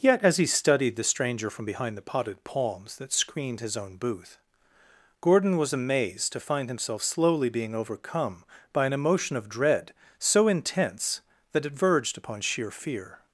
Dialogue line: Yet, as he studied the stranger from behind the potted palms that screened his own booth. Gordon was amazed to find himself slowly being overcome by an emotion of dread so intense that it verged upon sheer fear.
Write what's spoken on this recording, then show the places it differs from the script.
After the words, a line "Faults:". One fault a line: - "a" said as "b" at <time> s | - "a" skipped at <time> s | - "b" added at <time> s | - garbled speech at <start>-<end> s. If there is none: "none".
Yet, as he studied the stranger from behind the potted palms that screened his own booth. Gordon was amazed to find himself slowly being overcome by an emotion of dread so intense that it verged upon sheer fear.
Faults:
none